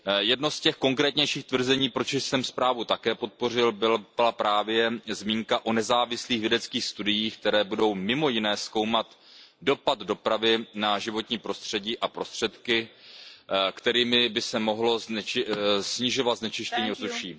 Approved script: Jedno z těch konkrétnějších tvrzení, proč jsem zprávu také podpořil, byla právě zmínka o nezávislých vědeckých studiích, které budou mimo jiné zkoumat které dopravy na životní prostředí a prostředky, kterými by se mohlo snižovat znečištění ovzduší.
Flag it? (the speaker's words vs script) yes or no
yes